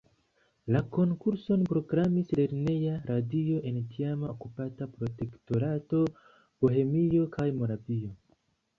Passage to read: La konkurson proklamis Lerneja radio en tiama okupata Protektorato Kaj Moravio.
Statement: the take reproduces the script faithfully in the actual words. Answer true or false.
false